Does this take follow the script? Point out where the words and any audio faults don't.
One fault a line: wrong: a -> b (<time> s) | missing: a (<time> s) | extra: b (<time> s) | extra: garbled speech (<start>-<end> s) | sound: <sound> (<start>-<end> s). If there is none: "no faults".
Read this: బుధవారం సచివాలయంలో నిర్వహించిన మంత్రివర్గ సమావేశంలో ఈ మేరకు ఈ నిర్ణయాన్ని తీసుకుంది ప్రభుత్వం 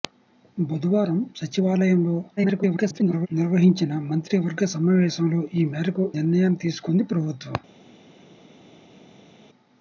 extra: garbled speech (2.4-3.3 s)
missing: ఈ (6.1 s)